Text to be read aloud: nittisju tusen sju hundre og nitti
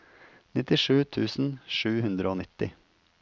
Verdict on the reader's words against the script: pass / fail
pass